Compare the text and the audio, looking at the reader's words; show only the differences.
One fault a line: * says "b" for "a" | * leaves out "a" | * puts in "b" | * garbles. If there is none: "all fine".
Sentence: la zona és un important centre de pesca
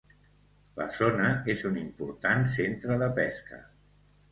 all fine